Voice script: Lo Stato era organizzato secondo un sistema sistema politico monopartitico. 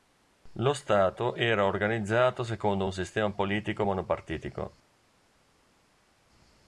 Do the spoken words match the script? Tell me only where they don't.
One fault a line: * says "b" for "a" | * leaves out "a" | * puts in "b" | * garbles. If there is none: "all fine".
* leaves out "sistema"